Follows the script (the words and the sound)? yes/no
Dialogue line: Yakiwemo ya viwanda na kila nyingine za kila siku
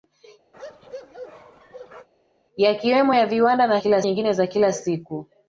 no